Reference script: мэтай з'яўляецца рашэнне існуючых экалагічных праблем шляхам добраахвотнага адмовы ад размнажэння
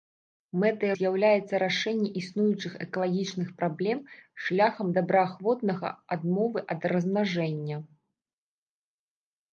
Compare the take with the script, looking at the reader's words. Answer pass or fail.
pass